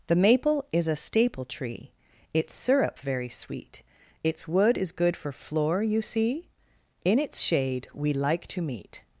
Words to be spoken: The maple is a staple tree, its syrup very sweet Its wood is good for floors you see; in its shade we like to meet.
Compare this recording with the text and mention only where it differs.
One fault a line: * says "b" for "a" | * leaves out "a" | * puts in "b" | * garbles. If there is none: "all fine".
* says "floor" for "floors"